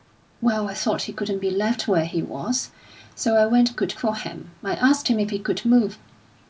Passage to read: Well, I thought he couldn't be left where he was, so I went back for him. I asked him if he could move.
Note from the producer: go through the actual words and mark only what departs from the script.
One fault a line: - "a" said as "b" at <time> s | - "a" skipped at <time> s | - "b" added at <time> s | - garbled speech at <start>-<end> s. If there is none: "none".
- "back" said as "could" at 3.7 s